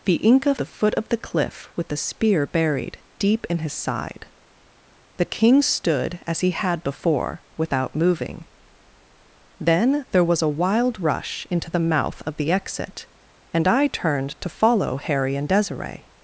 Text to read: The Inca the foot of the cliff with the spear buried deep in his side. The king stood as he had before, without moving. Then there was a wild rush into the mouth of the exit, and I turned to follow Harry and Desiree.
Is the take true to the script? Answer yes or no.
yes